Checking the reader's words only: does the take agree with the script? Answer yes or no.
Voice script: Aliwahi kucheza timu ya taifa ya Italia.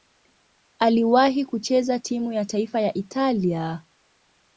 yes